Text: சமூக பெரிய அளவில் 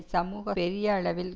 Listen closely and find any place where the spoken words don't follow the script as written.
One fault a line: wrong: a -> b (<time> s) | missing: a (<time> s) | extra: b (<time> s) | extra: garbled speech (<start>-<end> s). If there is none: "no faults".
no faults